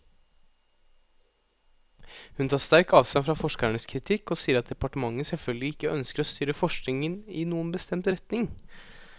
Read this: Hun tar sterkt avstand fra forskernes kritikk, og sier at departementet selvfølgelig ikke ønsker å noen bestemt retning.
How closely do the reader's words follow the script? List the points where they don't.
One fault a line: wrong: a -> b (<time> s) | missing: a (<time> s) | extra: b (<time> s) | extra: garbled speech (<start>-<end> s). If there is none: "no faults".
extra: styre forskningen i (6.3 s)